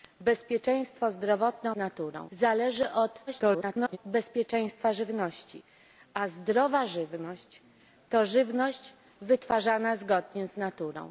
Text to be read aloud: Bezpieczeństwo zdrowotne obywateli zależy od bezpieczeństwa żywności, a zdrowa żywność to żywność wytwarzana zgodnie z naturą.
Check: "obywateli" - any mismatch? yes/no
yes